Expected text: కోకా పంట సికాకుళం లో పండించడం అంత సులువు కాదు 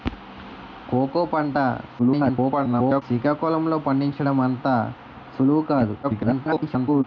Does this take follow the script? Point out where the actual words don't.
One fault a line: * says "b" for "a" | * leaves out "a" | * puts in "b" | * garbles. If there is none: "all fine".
* garbles
* garbles